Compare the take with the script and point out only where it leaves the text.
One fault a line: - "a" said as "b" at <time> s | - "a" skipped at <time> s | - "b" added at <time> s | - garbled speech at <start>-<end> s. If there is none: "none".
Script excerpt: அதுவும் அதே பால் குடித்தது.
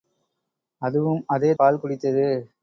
none